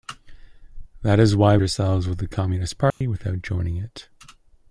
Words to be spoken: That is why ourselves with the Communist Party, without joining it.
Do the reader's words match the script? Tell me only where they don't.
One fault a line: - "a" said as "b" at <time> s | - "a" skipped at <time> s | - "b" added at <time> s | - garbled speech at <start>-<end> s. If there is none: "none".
none